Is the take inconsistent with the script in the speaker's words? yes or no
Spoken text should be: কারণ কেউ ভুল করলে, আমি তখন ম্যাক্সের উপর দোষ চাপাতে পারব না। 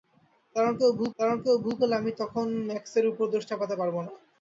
yes